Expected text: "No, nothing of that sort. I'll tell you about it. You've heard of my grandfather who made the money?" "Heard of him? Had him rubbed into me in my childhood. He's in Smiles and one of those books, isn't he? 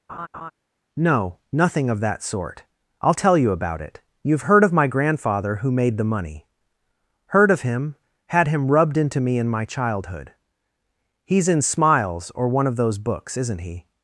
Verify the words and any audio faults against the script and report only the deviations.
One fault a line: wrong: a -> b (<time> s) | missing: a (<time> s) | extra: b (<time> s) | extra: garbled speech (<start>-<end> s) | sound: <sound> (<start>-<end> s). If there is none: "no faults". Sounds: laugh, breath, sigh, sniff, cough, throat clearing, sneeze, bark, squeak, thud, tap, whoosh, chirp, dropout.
sound: laugh (0.1-0.5 s)
wrong: and -> or (12.3 s)